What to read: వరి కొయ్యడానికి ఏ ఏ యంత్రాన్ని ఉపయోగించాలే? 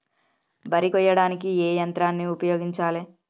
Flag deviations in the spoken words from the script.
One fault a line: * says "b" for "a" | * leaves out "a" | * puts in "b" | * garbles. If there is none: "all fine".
* leaves out "ఏ"